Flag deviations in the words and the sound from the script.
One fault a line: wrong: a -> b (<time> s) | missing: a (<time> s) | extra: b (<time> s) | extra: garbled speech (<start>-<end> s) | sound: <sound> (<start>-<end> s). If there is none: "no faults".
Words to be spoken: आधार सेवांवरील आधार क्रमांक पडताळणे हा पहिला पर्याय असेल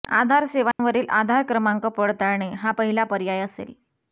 sound: dropout (0.7-0.8 s)